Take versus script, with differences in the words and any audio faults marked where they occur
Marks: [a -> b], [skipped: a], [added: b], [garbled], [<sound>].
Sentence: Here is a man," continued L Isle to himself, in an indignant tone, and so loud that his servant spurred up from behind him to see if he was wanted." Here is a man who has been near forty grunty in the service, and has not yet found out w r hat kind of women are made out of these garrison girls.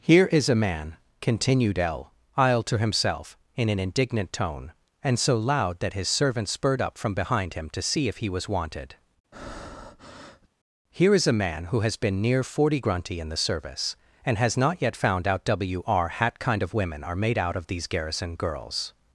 Here is a man," continued L Isle to himself, in an indignant tone, and so loud that his servant spurred up from behind him to see if he was wanted." [breath] Here is a man who has been near forty grunty in the service, and has not yet found out w r hat kind of women are made out of these garrison girls.